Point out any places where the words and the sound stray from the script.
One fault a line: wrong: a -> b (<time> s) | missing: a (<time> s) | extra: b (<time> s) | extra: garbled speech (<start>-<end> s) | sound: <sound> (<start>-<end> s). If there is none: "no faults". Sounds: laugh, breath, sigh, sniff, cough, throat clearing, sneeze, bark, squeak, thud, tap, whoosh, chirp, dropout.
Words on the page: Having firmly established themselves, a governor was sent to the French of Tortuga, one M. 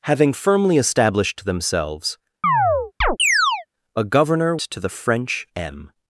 sound: chirp (2.4-3.7 s)
missing: was sent (4.6 s)
missing: of Tortuga one (5.5 s)